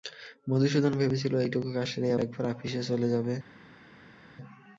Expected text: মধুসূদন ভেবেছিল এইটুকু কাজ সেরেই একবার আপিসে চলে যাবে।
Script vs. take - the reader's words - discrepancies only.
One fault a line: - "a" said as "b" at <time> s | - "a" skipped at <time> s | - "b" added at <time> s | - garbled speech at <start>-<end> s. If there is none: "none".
none